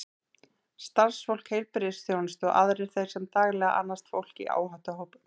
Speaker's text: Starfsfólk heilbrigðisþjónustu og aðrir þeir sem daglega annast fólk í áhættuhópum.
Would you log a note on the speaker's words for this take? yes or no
no